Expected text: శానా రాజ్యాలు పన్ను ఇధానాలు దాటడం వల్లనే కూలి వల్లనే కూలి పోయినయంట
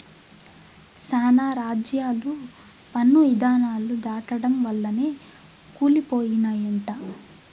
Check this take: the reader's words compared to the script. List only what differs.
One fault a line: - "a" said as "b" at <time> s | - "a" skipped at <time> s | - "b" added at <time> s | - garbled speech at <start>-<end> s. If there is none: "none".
- "వల్లనే కూలి" skipped at 6.0 s